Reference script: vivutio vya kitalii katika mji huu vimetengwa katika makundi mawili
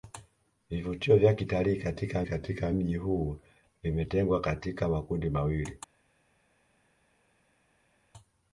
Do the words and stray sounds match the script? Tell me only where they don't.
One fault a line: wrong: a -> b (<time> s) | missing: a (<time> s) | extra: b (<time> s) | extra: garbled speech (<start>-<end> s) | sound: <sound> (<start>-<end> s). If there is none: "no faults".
extra: katika (2.2 s)